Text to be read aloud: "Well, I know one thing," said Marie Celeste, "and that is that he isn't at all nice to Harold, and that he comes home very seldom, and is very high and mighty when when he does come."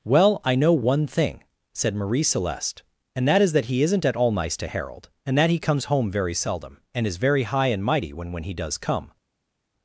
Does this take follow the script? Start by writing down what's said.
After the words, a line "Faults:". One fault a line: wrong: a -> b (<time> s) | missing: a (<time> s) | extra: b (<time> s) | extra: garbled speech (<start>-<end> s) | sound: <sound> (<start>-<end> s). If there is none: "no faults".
"Well, I know one thing," said Marie Celeste, "and that is that he isn't at all nice to Harold, and that he comes home very seldom, and is very high and mighty when when he does come."
Faults:
no faults